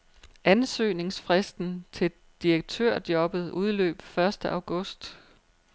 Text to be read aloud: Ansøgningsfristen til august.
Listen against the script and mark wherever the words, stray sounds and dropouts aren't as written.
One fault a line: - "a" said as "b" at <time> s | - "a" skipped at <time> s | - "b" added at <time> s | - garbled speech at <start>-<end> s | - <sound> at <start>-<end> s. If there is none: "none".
- "direktørjobbet udløb første" added at 2.4 s